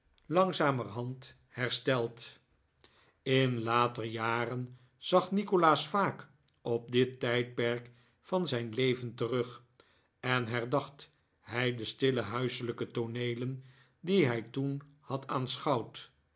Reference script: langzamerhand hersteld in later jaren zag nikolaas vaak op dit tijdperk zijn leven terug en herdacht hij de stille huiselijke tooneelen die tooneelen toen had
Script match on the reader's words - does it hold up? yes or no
no